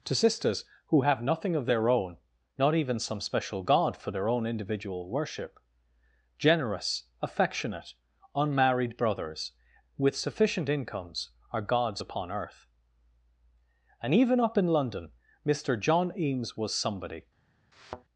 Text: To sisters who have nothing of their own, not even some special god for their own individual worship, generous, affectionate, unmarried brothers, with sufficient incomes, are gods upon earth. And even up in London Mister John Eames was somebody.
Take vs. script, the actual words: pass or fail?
pass